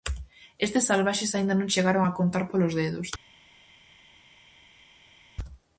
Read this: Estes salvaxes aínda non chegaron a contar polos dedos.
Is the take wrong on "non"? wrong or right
right